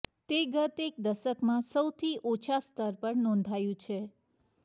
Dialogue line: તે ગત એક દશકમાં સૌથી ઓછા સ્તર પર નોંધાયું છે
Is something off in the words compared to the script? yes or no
no